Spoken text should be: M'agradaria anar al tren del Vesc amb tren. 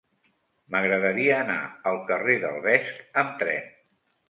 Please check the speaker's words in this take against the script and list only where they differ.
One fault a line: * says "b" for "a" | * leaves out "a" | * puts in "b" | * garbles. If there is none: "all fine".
* says "carrer" for "tren"